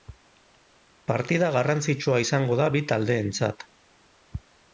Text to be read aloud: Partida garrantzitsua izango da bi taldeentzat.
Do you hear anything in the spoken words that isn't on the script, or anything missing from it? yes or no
no